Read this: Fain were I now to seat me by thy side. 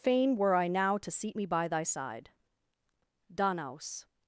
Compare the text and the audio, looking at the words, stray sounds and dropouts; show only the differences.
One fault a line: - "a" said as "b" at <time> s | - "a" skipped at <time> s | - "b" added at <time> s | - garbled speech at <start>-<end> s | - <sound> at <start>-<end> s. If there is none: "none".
- "Danaus" added at 3.3 s